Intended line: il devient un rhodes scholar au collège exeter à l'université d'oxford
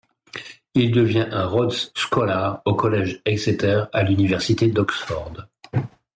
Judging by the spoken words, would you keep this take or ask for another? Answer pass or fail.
pass